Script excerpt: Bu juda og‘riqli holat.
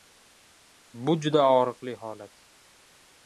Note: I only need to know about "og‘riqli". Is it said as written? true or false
true